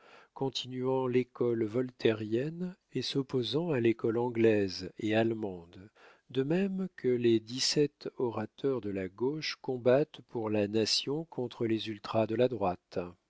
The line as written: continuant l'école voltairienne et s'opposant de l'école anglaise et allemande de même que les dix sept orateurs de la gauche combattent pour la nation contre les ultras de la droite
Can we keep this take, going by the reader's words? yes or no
no